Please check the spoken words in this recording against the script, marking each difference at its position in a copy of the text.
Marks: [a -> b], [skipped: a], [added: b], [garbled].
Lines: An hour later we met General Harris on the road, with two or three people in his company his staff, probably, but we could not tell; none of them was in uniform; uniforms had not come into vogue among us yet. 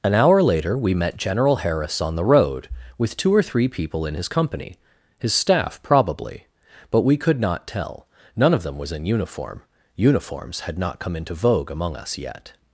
An hour later we met General Harris on the road, with two or three people in his company his staff, probably, but we could not tell; none of them was in uniform; uniforms had not come into vogue among us yet.